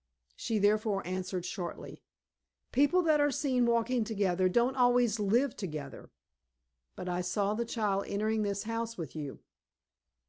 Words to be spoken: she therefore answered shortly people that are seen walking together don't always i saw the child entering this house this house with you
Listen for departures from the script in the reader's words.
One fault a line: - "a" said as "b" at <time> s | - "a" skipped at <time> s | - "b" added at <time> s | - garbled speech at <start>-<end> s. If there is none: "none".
- "live together but" added at 5.2 s
- "this house" skipped at 9.0 s